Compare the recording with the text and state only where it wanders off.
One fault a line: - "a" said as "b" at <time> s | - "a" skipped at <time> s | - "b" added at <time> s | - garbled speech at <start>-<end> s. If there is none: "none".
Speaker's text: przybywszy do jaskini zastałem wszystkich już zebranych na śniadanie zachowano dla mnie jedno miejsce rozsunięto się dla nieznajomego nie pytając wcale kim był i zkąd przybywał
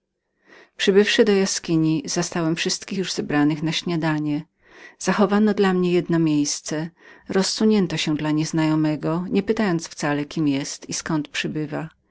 none